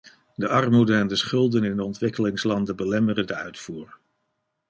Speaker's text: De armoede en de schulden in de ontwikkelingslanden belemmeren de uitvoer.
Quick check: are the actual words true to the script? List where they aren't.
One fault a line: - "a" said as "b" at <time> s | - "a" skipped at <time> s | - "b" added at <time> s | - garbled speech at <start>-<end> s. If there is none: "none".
none